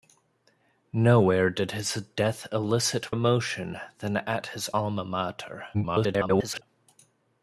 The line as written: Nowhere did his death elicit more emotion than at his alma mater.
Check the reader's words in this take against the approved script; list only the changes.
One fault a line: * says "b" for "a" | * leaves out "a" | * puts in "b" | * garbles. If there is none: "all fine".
* leaves out "more"
* garbles